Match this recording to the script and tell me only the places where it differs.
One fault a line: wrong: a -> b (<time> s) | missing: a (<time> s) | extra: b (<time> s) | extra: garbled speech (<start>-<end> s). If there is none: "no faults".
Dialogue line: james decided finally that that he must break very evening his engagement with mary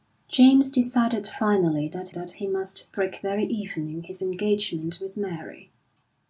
no faults